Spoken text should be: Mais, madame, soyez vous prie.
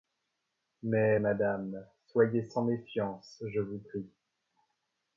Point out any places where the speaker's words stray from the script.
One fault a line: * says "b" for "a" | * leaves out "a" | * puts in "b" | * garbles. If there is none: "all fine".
* puts in "sans méfiance je"